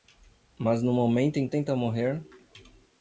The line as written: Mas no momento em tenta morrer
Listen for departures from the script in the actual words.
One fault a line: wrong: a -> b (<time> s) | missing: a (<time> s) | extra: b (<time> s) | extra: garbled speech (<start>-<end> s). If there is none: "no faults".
no faults